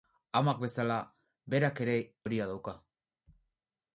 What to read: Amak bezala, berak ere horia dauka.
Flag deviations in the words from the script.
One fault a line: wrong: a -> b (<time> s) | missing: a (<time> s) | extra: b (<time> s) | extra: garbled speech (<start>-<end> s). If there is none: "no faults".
no faults